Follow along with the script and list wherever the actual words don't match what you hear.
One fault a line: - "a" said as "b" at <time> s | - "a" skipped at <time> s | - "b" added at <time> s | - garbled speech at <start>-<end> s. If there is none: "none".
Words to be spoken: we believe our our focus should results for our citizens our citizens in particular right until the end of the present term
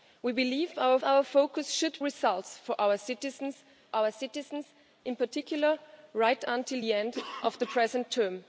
none